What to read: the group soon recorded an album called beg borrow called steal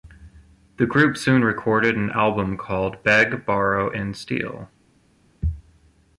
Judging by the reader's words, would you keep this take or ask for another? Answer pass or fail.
fail